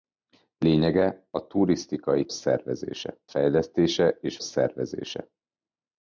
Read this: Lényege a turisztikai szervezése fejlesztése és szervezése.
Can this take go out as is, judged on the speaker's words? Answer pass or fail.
pass